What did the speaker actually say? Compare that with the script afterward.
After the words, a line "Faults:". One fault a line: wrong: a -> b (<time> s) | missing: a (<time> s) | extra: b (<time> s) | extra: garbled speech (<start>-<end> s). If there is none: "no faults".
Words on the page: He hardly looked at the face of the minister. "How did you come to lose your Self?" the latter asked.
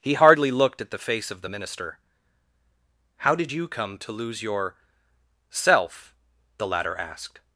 He hardly looked at the face of the minister. "How did you come to lose your Self?" the latter asked.
Faults:
no faults